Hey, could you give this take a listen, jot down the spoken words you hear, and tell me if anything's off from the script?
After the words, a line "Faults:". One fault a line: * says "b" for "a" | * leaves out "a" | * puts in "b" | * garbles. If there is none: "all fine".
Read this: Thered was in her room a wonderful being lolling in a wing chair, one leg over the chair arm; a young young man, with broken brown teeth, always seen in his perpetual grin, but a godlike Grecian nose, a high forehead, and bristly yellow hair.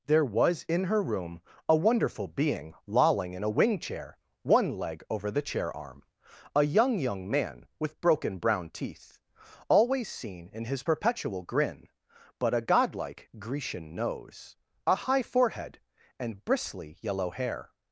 There was in her room a wonderful being lolling in a wing chair, one leg over the chair arm; a young young man, with broken brown teeth, always seen in his perpetual grin, but a godlike Grecian nose, a high forehead, and bristly yellow hair.
Faults:
* says "There" for "Thered"